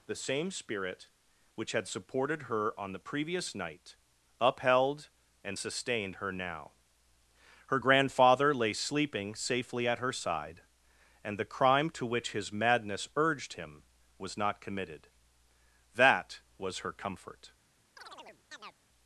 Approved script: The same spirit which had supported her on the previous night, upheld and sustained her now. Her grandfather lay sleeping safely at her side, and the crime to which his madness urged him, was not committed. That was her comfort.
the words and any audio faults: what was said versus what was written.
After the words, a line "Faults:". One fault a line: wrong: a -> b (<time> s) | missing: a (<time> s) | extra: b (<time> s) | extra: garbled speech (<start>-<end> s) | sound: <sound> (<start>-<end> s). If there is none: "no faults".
The same spirit which had supported her on the previous night, upheld and sustained her now. Her grandfather lay sleeping safely at her side, and the crime to which his madness urged him, was not committed. That was her comfort.
Faults:
sound: chirp (18.0-18.8 s)